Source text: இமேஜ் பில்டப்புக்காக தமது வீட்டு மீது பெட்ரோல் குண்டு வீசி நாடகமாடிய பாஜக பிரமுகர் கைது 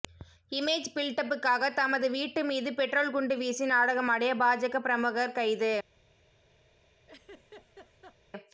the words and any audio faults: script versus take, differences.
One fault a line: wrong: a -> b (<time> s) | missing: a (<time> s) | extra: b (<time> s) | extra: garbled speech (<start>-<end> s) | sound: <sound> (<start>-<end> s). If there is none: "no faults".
sound: laugh (7.1-8.2 s)